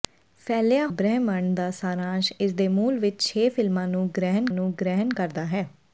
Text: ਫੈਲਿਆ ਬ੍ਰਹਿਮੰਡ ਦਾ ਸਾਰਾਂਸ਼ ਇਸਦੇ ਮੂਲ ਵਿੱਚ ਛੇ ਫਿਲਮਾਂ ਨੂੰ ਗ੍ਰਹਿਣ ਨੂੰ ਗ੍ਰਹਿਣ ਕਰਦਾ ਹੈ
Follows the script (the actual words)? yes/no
yes